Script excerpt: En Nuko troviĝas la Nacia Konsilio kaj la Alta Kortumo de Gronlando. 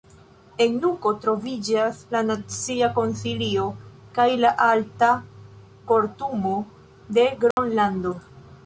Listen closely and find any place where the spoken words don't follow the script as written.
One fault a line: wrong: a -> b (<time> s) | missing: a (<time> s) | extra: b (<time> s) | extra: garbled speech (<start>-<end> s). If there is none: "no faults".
no faults